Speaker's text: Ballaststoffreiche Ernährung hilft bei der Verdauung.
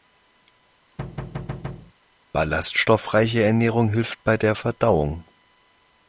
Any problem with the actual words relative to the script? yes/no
no